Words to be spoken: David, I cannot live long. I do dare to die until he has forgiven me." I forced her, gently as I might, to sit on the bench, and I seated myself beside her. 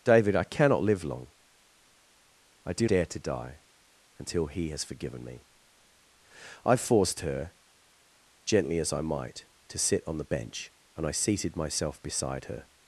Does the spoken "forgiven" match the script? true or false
true